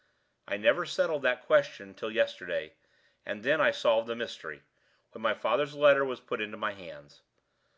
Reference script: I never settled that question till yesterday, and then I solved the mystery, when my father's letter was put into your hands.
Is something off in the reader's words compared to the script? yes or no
yes